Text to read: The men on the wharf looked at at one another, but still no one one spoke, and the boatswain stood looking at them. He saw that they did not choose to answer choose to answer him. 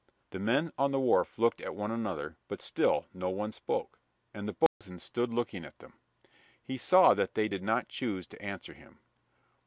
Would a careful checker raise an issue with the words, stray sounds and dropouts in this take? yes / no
yes